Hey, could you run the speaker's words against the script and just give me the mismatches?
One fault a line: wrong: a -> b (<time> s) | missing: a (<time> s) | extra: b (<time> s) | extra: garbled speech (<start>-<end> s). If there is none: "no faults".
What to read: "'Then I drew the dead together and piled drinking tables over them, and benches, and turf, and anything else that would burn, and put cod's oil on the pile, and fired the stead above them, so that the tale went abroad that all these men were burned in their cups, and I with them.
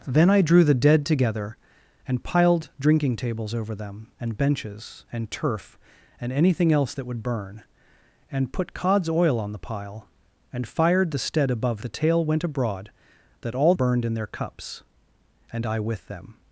missing: them so that (11.8 s)
missing: these men were (13.7 s)